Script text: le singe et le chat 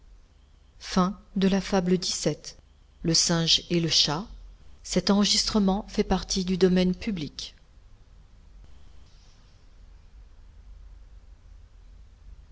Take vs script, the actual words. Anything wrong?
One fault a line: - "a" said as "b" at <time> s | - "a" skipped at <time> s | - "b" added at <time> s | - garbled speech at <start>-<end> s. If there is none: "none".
none